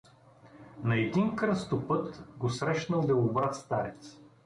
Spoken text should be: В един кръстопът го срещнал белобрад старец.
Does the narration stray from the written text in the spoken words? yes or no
yes